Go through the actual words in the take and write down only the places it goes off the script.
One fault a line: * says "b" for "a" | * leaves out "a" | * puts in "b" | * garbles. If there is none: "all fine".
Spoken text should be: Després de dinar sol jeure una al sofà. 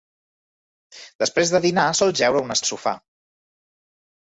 all fine